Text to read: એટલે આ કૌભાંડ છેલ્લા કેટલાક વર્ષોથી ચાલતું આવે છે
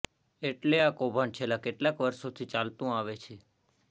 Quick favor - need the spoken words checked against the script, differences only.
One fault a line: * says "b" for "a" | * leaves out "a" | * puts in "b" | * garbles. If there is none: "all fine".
all fine